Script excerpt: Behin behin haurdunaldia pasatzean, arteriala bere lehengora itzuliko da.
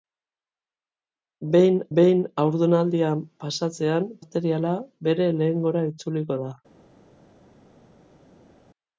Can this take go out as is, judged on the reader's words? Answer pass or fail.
pass